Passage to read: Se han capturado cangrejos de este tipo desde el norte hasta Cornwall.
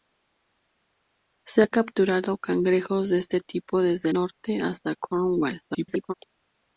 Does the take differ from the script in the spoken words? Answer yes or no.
yes